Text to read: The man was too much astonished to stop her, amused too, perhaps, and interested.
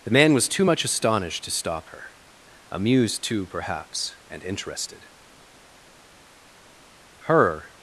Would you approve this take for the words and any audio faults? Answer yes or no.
no